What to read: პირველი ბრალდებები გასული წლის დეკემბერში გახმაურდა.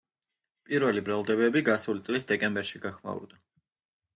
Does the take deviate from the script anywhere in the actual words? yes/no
no